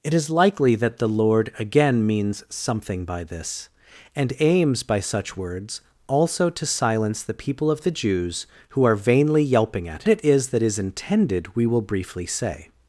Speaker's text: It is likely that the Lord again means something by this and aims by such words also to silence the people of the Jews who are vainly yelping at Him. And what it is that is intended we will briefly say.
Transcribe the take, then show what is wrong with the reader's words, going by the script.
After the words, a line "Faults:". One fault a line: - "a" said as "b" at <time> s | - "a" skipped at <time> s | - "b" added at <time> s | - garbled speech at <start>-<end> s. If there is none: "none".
It is likely that the Lord again means something by this and aims by such words also to silence the people of the Jews who are vainly yelping at It is that is intended we will briefly say.
Faults:
- "Him And what" skipped at 10.0 s